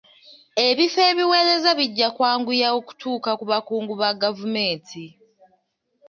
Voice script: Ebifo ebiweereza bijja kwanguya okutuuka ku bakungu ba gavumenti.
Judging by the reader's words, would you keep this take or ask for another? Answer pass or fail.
pass